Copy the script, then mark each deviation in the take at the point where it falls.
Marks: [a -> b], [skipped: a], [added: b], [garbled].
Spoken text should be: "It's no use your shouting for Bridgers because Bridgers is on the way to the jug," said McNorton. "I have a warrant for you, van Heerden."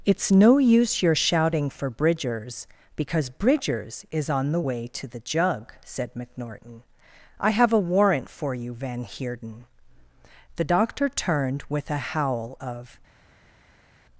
"It's no use your shouting for Bridgers because Bridgers is on the way to the jug," said McNorton. "I have a warrant for you, van Heerden." [added: The doctor turned with a howl of]